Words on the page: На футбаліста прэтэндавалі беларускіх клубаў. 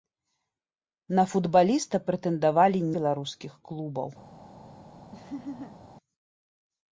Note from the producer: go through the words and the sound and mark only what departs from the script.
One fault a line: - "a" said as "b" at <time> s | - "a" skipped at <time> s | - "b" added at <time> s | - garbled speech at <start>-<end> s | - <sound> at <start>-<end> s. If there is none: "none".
- laugh at 5.1-5.8 s